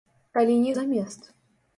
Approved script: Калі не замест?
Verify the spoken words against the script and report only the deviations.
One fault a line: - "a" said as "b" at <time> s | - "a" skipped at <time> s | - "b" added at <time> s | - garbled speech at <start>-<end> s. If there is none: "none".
none